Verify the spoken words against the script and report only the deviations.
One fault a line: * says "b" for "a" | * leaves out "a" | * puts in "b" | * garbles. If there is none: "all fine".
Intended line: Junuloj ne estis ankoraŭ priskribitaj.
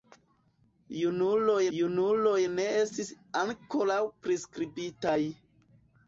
* puts in "junuloj"